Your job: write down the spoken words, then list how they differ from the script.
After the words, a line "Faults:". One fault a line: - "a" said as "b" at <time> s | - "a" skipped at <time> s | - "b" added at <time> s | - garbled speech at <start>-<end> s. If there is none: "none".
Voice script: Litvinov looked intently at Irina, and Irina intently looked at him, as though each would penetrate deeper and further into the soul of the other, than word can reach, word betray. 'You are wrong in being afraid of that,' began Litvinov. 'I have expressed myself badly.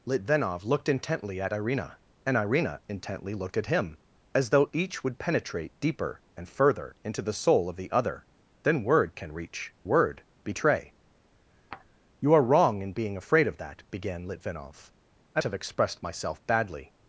Litvinov looked intently at Irina, and Irina intently looked at him, as though each would penetrate deeper and further into the soul of the other, than word can reach, word betray. 'You are wrong in being afraid of that,' began Litvinov. 'I have expressed myself badly.
Faults:
none